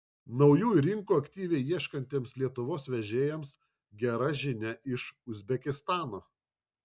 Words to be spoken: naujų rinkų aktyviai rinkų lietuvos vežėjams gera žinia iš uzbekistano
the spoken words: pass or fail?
fail